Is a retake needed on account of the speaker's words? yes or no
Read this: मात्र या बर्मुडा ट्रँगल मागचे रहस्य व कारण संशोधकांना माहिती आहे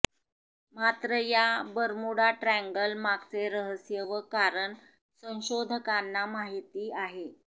no